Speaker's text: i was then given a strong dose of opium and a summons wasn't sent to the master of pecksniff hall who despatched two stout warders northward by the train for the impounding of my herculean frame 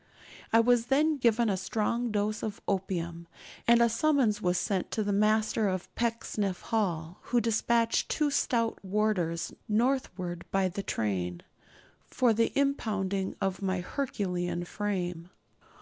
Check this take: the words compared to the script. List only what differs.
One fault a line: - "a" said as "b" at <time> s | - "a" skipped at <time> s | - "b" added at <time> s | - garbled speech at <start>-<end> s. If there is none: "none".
- "wasn't" said as "was" at 4.4 s